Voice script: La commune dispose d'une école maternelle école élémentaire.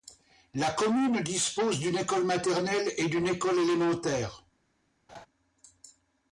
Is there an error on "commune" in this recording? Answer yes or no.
no